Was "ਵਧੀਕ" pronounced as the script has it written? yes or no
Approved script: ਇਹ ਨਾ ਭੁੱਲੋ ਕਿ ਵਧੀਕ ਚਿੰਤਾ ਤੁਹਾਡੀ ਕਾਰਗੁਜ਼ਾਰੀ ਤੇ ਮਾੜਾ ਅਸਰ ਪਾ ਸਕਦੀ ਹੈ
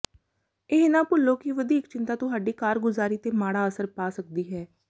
yes